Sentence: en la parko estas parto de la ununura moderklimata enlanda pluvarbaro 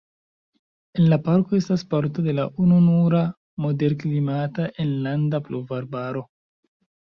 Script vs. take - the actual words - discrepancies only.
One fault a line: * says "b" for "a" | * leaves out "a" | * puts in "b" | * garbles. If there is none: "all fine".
all fine